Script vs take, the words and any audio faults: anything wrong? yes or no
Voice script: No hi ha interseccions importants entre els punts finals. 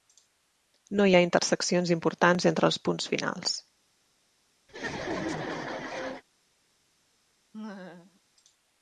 yes